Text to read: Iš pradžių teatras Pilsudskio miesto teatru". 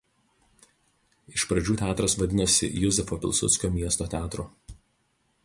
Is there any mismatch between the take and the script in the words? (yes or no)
yes